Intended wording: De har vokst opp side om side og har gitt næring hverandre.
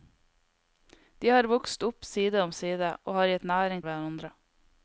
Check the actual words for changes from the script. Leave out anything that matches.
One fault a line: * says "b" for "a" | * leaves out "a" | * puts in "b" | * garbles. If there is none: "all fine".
all fine